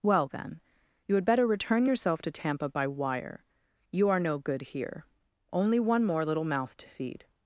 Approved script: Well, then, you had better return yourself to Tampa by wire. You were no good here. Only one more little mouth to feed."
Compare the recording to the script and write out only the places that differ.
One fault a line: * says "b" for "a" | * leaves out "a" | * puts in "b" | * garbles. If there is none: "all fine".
* says "are" for "were"